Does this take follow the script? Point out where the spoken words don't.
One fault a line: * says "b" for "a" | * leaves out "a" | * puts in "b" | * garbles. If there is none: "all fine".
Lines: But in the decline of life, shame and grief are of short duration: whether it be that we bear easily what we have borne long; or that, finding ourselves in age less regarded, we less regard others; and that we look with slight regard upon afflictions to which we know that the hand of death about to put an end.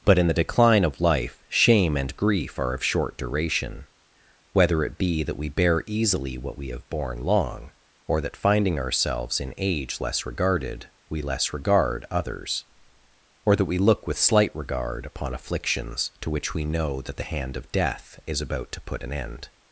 * says "or" for "and"
* puts in "is"